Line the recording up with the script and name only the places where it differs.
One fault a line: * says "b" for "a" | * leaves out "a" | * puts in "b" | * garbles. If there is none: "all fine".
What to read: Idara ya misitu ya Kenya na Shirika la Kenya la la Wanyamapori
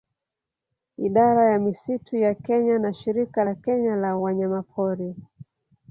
* leaves out "la"